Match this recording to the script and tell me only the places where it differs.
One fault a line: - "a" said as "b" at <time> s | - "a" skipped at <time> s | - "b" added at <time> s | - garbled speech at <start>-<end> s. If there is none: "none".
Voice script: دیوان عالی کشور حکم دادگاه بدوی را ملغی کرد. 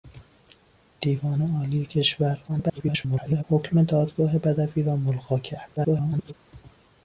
- garbled speech at 2.5-3.4 s
- garbled speech at 5.8-6.3 s